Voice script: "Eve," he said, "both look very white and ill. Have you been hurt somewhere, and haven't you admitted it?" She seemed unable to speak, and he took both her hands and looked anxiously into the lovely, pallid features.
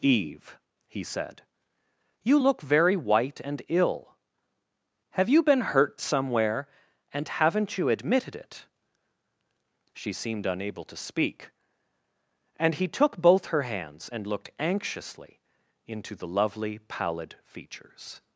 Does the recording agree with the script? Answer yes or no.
no